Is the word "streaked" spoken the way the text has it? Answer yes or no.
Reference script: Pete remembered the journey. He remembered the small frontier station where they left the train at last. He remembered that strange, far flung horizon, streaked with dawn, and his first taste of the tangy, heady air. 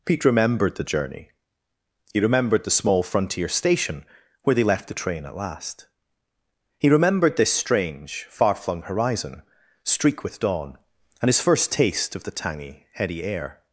no